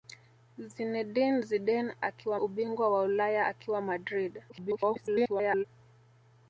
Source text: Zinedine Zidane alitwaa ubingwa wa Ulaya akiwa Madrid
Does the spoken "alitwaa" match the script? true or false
false